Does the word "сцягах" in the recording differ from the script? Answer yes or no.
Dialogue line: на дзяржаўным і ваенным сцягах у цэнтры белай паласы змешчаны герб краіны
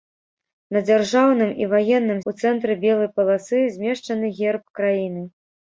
yes